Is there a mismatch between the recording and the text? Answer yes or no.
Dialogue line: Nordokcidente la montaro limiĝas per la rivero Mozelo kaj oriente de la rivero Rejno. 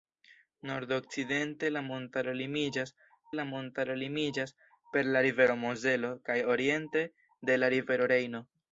yes